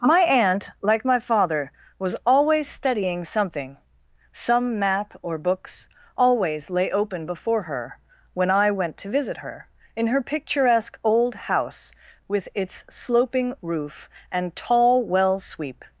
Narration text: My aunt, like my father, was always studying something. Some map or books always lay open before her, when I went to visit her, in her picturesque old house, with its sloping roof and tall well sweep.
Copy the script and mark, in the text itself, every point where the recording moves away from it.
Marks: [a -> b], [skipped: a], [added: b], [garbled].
My aunt, like my father, was always studying something. Some map or books always lay open before her, when I went to visit her, in her picturesque old house, with its sloping roof and tall well sweep.